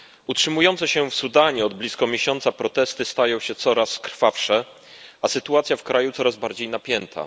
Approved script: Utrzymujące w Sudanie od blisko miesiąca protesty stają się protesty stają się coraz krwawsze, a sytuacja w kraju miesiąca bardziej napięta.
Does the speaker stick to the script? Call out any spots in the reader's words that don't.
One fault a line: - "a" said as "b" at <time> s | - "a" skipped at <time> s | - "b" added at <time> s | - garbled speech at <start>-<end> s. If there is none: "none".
- "się" added at 0.9 s
- "protesty stają się" skipped at 3.5 s
- "miesiąca" said as "coraz" at 6.1 s